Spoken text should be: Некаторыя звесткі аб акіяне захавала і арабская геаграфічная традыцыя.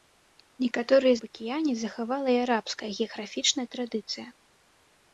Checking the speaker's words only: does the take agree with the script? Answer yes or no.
no